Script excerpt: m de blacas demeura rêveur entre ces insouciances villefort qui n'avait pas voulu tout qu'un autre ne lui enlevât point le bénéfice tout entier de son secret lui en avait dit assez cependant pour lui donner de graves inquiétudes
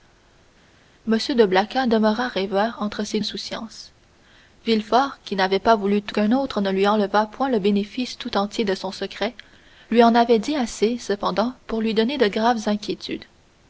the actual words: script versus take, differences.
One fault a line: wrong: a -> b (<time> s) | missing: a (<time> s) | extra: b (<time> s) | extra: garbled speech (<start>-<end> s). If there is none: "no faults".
no faults